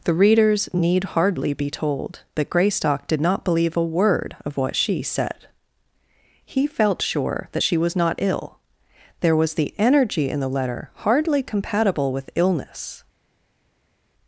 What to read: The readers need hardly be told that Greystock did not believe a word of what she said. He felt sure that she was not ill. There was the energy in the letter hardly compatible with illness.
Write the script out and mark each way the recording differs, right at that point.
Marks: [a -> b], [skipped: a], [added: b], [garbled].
The readers need hardly be told that Greystock did not believe a word of what she said. He felt sure that she was not ill. There was the energy in the letter hardly compatible with illness.